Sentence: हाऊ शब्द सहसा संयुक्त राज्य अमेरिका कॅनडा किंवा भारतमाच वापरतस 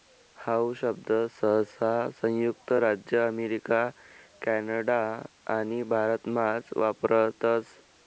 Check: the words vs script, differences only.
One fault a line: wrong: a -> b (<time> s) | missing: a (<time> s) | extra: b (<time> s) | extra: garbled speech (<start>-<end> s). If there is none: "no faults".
wrong: किंवा -> आणि (5.5 s)